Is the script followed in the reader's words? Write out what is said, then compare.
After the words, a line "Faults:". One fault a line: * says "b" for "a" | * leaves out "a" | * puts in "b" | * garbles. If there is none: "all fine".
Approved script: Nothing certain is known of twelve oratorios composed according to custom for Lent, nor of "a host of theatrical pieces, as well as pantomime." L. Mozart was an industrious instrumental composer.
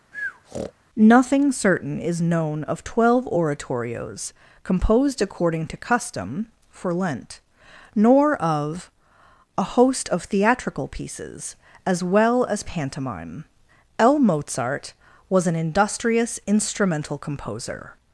Nothing certain is known of twelve oratorios composed according to custom for Lent, nor of "a host of theatrical pieces, as well as pantomime." L. Mozart was an industrious instrumental composer.
Faults:
all fine